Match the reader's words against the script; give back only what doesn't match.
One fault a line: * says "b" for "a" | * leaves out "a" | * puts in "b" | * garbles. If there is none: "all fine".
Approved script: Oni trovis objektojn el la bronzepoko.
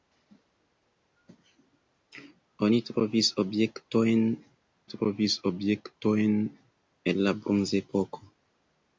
* puts in "trovis objektojn"